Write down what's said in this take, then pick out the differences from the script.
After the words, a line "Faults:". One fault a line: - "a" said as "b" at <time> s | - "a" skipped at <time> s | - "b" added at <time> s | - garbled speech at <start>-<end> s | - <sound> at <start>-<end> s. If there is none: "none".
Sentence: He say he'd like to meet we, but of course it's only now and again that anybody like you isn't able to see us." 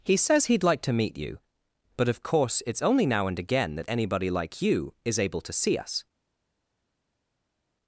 He says he'd like to meet you, but of course it's only now and again that anybody like you is able to see us."
Faults:
- "say" said as "says" at 0.2 s
- "we" said as "you" at 1.1 s
- "isn't" said as "is" at 5.0 s